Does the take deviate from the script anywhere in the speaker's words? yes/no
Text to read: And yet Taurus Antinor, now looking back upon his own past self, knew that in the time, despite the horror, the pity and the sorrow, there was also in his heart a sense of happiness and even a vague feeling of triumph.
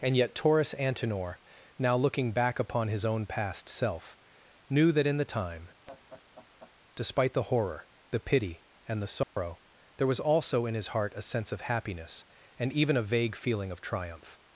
no